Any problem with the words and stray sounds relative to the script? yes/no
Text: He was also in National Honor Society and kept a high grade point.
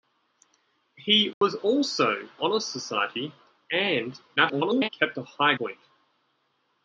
yes